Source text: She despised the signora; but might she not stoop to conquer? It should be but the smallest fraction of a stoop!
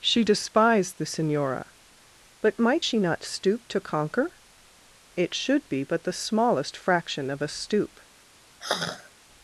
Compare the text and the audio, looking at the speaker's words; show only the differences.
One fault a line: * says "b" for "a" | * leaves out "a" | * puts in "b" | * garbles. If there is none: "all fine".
all fine